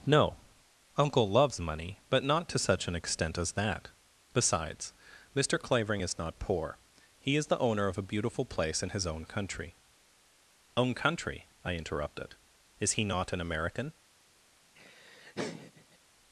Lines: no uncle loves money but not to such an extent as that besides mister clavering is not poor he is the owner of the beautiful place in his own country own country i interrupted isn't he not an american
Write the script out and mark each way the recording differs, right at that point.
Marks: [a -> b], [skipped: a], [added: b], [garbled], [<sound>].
no uncle loves money but not to such an extent as that besides mister clavering is not poor he is the owner of [the -> a] beautiful place in his own country own country i interrupted [isn't -> is] he not an american [laugh]